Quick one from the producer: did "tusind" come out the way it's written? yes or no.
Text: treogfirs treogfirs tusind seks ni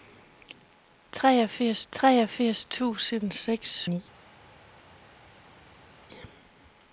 yes